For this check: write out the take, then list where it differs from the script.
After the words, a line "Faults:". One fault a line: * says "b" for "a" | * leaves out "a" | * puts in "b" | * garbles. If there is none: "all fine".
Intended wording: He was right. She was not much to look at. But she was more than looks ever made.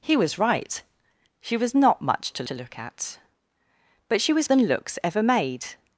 He was right. She was not much to to look at. But she was than looks ever made.
Faults:
* puts in "to"
* leaves out "more"